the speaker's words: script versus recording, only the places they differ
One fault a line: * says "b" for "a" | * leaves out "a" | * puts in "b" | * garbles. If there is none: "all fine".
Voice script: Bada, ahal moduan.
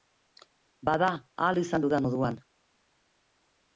* puts in "izan dudan"